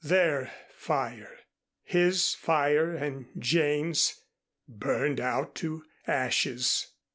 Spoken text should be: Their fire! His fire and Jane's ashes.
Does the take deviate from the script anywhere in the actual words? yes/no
yes